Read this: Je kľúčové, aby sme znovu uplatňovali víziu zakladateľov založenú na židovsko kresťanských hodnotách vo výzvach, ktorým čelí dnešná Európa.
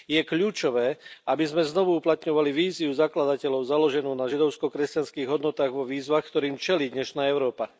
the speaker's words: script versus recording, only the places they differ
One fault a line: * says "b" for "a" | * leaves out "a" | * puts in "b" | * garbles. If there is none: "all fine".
all fine